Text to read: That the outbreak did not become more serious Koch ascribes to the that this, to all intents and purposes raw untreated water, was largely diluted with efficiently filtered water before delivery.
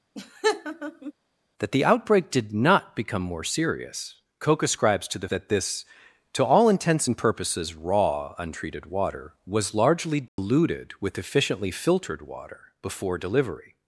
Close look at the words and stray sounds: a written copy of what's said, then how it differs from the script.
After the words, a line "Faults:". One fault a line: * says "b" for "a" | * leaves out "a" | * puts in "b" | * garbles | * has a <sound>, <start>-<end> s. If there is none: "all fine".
That the outbreak did not become more serious Koch ascribes to the that this, to all intents and purposes raw untreated water, was largely diluted with efficiently filtered water before delivery.
Faults:
* has a laugh, 0.1-1.1 s
* has a dropout, 10.3-10.4 s